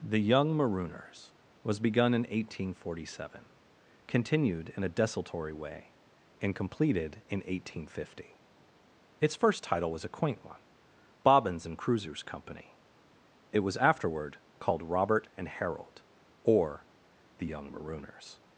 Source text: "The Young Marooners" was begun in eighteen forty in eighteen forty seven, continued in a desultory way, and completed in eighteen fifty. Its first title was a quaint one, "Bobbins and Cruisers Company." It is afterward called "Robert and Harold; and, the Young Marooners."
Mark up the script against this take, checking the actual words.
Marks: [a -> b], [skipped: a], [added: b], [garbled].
"The Young Marooners" was begun in eighteen forty [skipped: in eighteen forty] seven, continued in a desultory way, and completed in eighteen fifty. Its first title was a quaint one, "Bobbins and Cruisers Company." It [is -> was] afterward called "Robert and Harold; [and, -> or] the Young Marooners."